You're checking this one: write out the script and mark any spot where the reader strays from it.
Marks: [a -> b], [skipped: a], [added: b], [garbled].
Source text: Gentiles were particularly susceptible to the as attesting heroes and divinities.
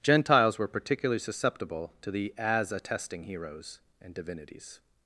Gentiles were particularly susceptible to the as attesting heroes and divinities.